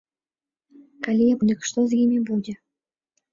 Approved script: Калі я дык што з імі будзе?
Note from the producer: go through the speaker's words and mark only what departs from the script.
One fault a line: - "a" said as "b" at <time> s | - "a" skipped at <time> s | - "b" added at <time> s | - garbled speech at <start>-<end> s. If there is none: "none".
none